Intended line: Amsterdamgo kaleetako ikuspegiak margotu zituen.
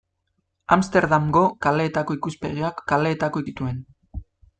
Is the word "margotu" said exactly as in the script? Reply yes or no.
no